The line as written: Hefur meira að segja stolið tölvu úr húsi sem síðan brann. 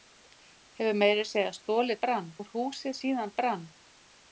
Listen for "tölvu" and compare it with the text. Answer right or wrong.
wrong